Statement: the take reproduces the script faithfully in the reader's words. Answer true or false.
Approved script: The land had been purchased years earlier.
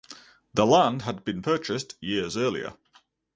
true